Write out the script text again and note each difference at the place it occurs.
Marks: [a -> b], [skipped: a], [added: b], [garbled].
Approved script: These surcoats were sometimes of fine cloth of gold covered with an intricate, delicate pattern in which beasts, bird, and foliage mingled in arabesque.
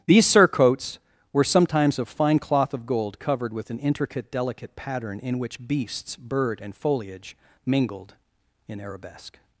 These surcoats were sometimes of fine cloth of gold covered with an intricate, delicate pattern in which beasts, bird, and foliage mingled in arabesque.